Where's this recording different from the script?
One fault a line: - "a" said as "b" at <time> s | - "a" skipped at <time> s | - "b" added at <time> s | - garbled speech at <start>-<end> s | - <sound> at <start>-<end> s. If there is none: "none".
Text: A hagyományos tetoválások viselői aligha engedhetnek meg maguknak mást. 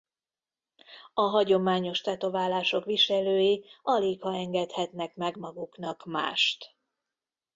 none